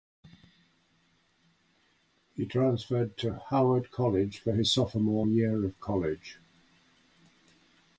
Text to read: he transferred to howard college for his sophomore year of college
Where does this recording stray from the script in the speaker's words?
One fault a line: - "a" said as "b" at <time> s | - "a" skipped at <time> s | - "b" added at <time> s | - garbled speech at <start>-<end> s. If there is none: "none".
none